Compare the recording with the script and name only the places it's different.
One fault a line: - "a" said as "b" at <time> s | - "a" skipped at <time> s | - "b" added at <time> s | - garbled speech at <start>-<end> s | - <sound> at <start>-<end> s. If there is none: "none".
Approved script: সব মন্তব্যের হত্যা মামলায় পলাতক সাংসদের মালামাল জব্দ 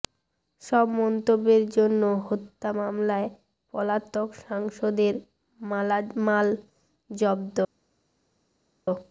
- "জন্য" added at 1.7 s